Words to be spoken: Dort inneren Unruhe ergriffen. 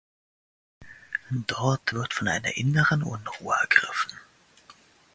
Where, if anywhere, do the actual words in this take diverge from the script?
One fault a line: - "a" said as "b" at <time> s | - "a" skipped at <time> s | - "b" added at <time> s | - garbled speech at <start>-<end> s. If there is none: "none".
- "wird von einer" added at 1.9 s